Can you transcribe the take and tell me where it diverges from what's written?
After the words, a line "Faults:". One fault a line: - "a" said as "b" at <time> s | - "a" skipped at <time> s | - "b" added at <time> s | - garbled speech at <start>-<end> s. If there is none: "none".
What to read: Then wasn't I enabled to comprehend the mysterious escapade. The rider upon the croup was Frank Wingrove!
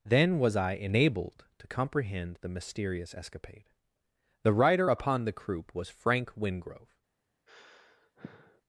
Then was I enabled to comprehend the mysterious escapade. The rider upon the croup was Frank Wingrove!
Faults:
- "wasn't" said as "was" at 0.4 s